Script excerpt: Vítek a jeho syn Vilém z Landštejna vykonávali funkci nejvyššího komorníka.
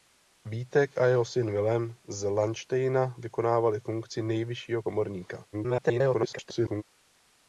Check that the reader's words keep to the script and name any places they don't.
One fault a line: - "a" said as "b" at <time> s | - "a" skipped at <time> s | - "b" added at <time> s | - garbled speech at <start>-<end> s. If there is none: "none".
- garbled speech at 5.5-6.8 s